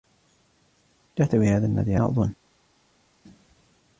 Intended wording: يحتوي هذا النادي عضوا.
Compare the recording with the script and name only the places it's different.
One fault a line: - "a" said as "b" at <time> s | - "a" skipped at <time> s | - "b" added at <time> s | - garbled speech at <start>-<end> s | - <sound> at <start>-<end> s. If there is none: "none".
none